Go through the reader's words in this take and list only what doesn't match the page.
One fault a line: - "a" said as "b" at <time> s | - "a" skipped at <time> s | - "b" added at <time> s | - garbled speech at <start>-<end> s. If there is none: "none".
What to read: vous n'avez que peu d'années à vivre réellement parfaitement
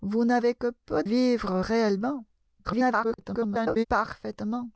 - "d'années à" skipped at 1.0 s
- garbled speech at 2.6-3.8 s